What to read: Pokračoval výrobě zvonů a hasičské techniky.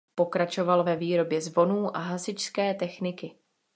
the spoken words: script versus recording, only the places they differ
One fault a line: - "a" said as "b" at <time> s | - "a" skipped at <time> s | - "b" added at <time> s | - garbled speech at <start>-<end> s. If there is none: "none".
- "ve" added at 0.8 s